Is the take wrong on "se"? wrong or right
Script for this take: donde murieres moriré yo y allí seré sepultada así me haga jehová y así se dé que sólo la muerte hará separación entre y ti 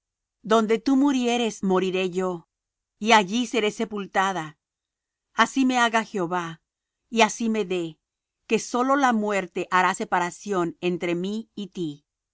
wrong